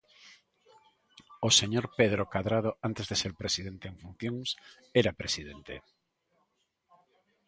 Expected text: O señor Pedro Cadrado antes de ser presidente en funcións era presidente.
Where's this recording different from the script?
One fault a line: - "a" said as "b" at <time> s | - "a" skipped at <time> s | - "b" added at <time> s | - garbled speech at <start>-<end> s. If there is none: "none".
none